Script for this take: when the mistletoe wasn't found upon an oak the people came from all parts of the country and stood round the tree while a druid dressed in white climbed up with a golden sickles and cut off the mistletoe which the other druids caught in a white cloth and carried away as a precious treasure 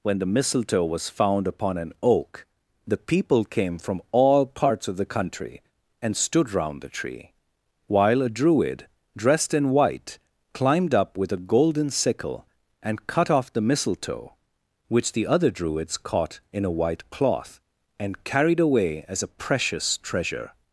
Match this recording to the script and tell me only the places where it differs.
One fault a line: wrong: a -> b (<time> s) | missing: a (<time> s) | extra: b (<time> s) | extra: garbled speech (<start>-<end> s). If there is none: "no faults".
wrong: wasn't -> was (0.8 s)
wrong: sickles -> sickle (11.9 s)